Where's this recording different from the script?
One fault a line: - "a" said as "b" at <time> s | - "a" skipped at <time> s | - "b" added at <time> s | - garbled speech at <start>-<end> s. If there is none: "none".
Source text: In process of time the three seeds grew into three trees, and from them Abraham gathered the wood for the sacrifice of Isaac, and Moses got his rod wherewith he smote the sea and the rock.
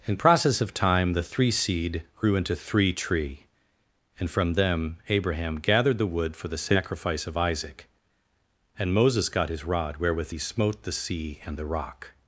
- "seeds" said as "seed" at 1.5 s
- "trees" said as "tree" at 2.9 s